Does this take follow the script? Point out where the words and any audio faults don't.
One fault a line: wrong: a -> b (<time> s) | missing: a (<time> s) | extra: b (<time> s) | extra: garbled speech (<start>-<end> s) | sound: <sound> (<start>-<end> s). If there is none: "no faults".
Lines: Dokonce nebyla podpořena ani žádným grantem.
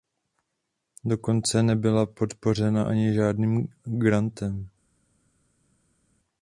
no faults